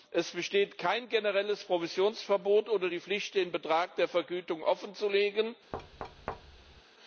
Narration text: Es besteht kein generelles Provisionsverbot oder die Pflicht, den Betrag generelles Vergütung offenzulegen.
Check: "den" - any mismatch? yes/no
no